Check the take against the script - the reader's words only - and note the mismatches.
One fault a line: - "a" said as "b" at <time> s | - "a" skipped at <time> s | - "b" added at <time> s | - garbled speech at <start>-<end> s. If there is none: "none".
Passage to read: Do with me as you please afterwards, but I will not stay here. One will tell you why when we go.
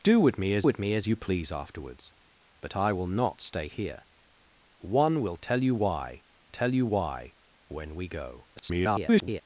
- "with me as" added at 0.6 s
- "tell you why" added at 6.5 s
- garbled speech at 8.6-9.4 s